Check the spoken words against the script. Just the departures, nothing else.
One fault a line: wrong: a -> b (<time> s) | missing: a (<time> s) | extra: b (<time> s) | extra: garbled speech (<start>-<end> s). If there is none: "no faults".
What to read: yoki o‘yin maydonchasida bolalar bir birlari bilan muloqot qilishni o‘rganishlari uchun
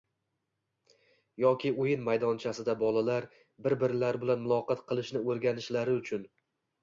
no faults